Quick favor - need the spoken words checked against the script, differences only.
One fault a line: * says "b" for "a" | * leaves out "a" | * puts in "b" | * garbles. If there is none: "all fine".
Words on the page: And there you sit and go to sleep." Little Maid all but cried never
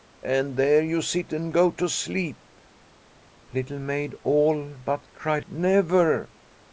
all fine